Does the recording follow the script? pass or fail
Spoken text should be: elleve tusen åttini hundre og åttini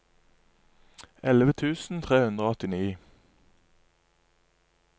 fail